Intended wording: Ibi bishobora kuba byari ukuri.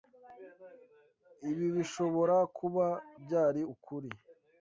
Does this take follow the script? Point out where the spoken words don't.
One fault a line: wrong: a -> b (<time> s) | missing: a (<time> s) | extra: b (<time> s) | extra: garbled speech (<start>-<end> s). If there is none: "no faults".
no faults